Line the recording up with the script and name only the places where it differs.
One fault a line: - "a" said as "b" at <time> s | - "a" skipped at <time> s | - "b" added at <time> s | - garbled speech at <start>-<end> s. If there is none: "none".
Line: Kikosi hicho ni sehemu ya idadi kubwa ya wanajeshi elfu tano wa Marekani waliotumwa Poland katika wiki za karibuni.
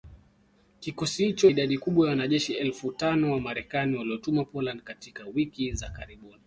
- "ni sehemu ya" skipped at 1.5 s